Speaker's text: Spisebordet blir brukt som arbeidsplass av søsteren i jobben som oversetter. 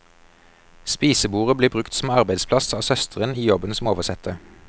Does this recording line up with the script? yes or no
yes